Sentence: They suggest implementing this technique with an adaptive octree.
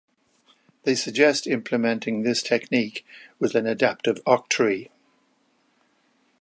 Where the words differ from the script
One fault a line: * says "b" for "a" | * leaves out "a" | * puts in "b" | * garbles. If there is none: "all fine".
all fine